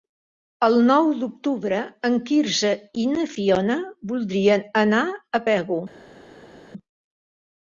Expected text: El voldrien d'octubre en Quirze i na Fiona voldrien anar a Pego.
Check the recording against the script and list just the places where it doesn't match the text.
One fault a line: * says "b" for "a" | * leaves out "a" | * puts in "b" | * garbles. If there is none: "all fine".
* says "nou" for "voldrien"